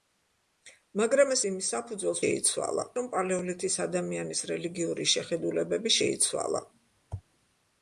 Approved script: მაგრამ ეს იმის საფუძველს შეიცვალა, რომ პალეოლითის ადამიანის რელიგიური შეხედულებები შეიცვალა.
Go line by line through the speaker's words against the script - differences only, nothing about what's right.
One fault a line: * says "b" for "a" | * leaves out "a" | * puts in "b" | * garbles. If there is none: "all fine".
all fine